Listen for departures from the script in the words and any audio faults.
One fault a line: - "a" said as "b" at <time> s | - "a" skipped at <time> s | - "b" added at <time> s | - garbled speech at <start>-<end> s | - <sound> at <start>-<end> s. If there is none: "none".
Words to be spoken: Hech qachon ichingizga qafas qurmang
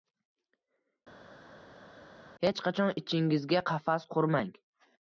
none